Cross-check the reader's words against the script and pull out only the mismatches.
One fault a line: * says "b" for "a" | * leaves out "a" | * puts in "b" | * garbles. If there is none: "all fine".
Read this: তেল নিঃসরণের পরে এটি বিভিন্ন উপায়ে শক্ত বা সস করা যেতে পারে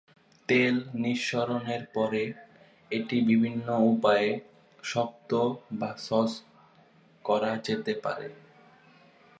all fine